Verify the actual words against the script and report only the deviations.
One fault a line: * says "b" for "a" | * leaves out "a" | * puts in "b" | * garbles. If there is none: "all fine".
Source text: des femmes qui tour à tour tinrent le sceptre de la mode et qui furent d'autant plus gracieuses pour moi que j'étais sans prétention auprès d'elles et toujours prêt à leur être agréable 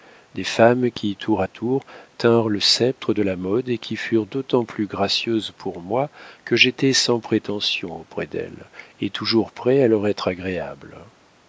all fine